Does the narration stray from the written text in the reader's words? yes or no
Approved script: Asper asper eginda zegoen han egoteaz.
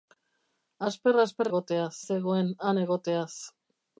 yes